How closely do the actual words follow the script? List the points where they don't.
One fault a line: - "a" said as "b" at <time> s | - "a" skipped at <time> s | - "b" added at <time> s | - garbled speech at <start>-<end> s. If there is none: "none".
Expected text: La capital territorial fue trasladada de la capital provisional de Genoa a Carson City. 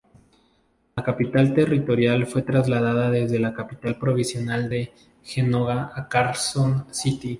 - "de" said as "desde" at 3.1 s